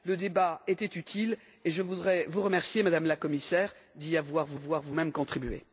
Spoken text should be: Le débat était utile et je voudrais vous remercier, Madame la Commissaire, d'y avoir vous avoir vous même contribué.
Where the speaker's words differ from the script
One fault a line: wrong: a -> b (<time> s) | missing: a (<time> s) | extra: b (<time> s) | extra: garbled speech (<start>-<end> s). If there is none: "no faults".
no faults